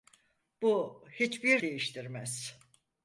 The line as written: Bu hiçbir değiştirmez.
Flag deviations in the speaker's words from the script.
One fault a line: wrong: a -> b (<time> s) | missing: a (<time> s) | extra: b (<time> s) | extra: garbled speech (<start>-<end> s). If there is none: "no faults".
no faults